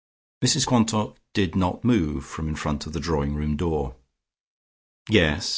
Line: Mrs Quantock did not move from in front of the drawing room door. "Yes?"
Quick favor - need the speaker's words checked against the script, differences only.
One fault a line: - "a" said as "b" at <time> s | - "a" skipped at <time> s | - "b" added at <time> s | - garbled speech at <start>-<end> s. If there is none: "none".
none